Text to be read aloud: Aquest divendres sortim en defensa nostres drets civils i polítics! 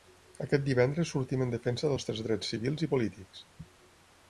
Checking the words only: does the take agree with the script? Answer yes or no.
yes